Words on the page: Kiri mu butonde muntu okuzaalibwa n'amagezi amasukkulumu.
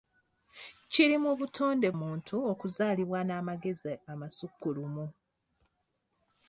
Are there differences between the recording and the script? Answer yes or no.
no